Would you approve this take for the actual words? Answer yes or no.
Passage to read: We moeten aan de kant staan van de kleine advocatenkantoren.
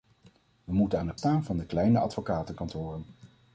no